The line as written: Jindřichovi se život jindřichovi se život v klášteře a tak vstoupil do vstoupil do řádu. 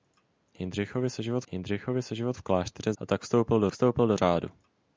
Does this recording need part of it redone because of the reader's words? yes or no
no